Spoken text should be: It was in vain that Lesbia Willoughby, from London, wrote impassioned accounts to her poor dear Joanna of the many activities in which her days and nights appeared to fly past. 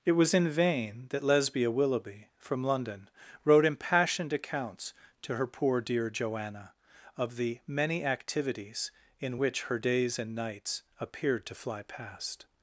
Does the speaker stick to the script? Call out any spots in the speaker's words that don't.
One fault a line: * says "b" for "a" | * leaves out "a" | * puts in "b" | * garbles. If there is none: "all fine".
all fine